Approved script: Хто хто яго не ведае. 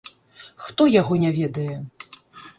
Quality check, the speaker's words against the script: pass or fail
fail